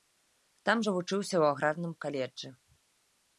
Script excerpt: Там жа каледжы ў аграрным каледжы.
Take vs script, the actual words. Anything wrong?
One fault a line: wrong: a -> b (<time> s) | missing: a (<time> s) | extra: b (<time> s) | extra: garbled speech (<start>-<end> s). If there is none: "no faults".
wrong: каледжы -> вучыўся (1.0 s)